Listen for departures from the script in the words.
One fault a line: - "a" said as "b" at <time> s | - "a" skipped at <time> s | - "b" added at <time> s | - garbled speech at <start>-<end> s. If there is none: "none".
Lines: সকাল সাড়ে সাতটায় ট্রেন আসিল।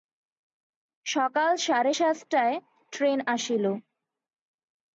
none